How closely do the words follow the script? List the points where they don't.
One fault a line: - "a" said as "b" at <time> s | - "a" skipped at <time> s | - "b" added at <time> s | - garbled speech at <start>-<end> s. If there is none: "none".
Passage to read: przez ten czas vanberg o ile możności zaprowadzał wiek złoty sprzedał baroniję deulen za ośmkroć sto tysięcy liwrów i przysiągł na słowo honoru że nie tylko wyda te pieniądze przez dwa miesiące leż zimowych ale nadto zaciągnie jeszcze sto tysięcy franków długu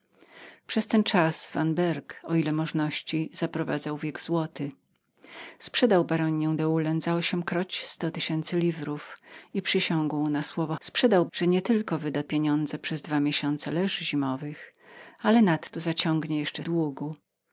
- "honoru" said as "sprzedał" at 10.8 s
- "te" skipped at 12.2 s
- "sto tysięcy franków" skipped at 16.6 s